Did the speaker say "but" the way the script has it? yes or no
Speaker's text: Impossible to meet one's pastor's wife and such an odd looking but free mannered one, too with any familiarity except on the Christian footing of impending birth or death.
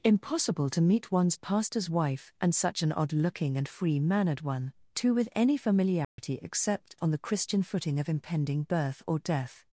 no